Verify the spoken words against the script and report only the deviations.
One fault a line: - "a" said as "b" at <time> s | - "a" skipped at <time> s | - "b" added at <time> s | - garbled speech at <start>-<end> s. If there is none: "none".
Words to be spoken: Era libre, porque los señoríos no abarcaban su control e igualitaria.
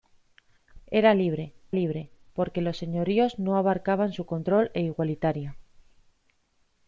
- "libre" added at 1.7 s